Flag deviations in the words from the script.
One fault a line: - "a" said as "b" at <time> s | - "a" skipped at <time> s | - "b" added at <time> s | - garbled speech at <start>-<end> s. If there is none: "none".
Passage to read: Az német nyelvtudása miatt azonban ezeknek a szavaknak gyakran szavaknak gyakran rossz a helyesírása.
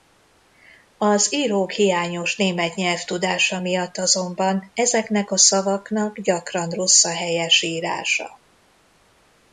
- "írók hiányos" added at 1.3 s
- "szavaknak gyakran" skipped at 6.7 s